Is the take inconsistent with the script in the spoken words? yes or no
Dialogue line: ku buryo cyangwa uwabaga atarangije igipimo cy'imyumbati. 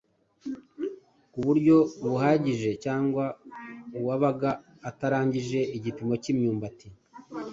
yes